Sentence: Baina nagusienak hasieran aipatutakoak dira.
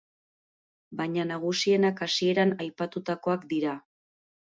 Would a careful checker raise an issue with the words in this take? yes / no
no